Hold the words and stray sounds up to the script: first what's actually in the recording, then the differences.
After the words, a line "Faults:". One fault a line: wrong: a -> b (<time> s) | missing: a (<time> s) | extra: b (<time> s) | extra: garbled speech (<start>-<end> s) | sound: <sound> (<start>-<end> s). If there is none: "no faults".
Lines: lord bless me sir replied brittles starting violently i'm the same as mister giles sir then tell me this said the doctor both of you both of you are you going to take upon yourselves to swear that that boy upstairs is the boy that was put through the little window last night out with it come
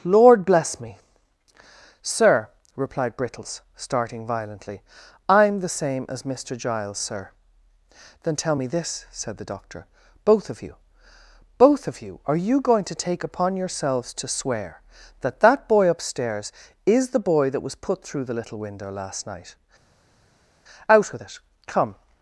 lord bless me sir replied brittles starting violently i'm the same as mister giles sir then tell me this said the doctor both of you both of you are you going to take upon yourselves to swear that that boy upstairs is the boy that was put through the little window last night out with it come
Faults:
no faults